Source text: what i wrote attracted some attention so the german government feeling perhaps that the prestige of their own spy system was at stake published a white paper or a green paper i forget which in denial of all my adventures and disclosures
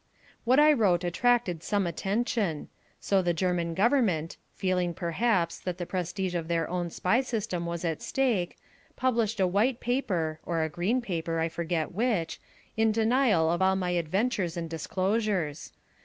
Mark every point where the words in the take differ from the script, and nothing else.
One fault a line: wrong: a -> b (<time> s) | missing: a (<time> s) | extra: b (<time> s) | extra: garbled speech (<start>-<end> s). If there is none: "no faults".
no faults